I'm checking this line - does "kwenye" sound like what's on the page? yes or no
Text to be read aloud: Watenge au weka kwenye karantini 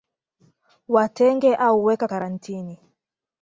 no